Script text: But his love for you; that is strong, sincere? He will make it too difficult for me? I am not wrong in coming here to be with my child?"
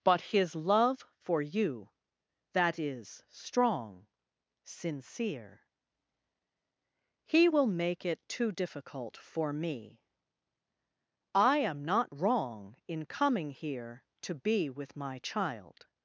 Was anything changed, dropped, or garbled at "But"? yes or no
no